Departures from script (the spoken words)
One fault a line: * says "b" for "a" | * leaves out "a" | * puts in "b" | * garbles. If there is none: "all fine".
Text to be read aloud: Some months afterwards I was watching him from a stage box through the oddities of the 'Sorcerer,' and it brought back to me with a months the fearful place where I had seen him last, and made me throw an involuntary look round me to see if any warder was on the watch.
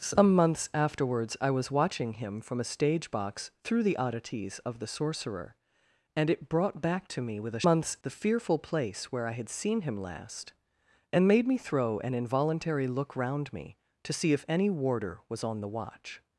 all fine